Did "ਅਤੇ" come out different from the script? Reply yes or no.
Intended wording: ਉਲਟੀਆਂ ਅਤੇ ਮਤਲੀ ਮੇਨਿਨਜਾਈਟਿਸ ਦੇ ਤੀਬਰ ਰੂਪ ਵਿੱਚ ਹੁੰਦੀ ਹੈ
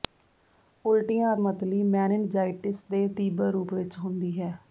yes